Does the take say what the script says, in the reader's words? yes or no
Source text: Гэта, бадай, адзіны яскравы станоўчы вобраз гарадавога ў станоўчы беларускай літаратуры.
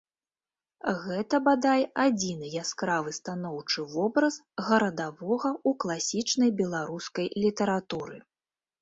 no